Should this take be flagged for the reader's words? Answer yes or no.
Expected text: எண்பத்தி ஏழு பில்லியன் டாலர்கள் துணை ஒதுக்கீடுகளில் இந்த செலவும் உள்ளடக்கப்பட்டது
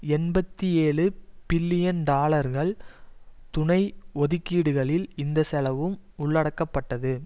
no